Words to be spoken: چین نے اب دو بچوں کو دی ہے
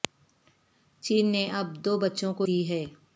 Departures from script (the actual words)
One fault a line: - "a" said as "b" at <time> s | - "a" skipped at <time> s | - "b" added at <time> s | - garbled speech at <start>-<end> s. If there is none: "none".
none